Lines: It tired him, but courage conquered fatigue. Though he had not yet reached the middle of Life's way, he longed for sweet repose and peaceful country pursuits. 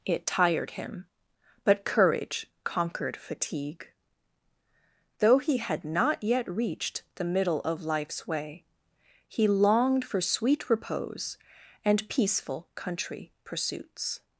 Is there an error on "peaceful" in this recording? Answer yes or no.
no